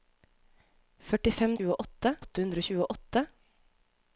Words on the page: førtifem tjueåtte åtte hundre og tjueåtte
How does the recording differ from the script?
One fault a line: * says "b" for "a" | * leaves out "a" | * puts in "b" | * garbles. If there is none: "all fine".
all fine